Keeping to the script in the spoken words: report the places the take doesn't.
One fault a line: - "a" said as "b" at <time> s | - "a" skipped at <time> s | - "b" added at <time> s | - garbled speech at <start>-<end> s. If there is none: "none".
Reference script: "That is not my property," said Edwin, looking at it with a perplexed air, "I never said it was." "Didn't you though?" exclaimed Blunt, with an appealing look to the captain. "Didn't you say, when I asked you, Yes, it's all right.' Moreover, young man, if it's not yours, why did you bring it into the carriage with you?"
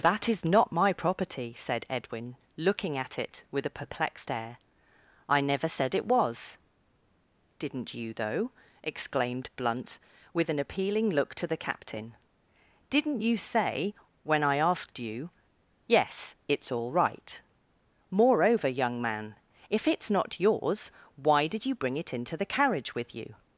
none